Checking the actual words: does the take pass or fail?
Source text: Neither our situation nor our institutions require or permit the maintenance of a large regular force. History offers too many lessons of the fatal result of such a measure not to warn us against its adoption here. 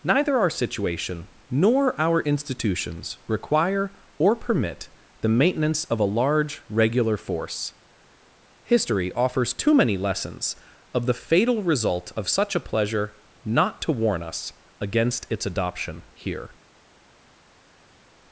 fail